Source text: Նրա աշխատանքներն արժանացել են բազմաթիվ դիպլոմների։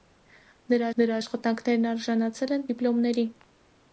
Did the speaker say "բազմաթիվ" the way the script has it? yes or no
no